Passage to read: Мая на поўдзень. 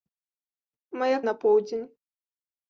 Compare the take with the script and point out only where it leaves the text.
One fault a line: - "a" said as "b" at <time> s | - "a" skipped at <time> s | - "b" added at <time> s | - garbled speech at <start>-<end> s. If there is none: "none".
none